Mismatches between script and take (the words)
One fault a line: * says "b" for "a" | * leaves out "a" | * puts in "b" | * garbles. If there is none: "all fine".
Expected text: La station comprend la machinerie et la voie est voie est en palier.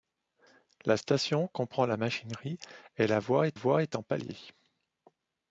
all fine